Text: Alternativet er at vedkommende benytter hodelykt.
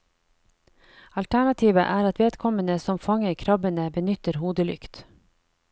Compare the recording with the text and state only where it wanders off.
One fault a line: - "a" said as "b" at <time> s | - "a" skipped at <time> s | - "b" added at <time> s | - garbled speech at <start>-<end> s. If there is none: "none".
- "som fanger krabbene" added at 2.8 s